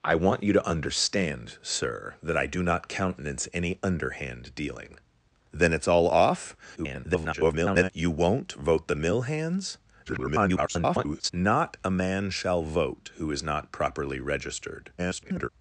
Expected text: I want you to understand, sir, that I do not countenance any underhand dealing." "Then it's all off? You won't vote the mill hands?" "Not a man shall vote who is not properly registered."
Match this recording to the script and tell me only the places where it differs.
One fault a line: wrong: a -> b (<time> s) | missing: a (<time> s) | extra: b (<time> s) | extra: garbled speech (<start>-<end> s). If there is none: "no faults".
extra: garbled speech (6.8-7.9 s)
extra: garbled speech (10.1-11.3 s)
extra: garbled speech (15.0-15.5 s)